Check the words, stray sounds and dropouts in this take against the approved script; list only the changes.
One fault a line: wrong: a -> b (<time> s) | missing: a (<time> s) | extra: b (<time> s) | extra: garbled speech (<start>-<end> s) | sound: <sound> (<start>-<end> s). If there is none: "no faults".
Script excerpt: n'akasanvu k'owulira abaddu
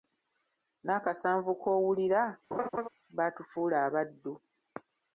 sound: laugh (2.5-2.9 s)
extra: baatufuula (3.2 s)